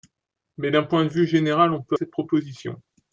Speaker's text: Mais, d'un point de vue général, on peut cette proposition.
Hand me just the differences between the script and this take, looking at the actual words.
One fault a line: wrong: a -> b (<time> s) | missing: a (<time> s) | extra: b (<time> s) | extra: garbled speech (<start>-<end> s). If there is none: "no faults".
no faults